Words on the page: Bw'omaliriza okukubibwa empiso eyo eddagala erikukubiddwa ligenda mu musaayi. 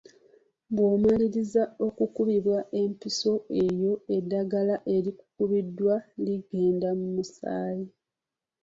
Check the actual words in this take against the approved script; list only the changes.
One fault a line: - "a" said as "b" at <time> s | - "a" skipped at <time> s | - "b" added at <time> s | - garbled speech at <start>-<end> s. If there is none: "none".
none